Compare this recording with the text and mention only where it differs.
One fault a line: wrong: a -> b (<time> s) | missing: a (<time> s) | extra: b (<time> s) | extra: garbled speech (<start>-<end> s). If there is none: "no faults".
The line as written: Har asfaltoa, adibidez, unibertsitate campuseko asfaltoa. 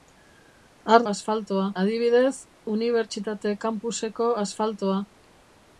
no faults